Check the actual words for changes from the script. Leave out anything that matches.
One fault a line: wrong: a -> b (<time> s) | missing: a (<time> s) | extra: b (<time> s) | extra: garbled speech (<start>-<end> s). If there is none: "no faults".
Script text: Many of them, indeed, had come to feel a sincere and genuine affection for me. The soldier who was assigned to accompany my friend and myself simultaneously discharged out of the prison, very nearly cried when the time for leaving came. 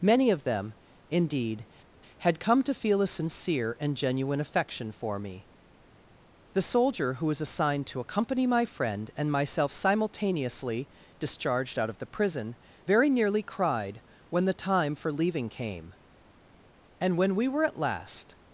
extra: And when we were at last (17.0 s)